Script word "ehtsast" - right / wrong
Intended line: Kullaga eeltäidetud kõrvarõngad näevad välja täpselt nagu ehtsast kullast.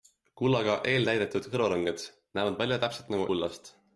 wrong